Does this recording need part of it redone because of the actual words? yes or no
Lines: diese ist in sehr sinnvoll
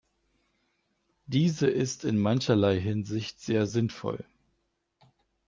yes